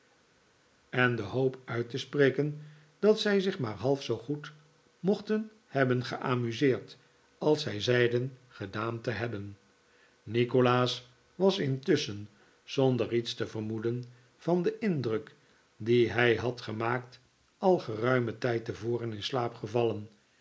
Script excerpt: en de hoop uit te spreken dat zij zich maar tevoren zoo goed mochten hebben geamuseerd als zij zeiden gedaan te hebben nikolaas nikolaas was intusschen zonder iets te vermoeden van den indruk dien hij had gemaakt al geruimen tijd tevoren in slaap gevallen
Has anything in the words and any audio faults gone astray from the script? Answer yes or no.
yes